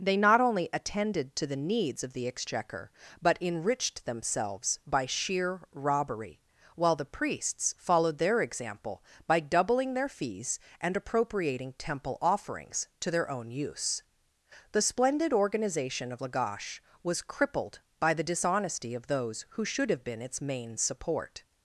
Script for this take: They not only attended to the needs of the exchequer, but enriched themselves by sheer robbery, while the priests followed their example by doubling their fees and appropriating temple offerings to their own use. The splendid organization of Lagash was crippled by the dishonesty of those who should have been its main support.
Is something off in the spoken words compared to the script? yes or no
no